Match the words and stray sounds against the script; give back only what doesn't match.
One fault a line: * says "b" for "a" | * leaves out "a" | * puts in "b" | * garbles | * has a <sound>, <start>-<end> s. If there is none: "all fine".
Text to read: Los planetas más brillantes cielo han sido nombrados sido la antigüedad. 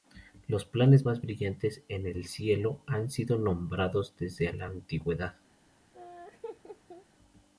* puts in "en el"
* says "desde" for "sido"
* has a laugh, 5.9-7.1 s